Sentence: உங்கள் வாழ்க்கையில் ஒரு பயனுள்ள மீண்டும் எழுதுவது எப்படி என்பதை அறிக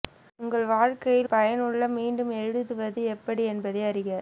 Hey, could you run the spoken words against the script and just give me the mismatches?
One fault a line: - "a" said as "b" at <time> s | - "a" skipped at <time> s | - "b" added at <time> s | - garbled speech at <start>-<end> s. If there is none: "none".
- "ஒரு" skipped at 1.3 s